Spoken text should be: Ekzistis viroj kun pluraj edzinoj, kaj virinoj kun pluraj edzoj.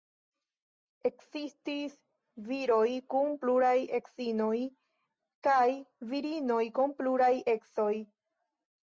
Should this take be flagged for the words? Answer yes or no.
no